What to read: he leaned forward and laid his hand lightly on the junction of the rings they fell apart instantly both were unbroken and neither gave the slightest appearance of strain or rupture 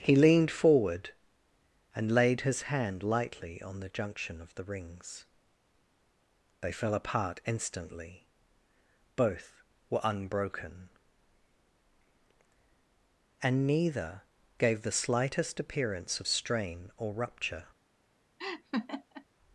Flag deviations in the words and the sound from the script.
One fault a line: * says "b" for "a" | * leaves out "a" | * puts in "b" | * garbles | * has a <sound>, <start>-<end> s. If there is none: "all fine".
* has a laugh, 18.4-19.3 s